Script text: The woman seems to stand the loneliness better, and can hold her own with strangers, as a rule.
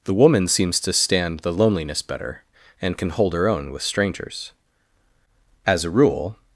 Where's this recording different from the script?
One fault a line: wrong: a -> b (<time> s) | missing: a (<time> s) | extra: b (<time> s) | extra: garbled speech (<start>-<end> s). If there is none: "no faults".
no faults